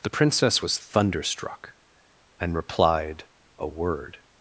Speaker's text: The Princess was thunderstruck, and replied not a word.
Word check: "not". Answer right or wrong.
wrong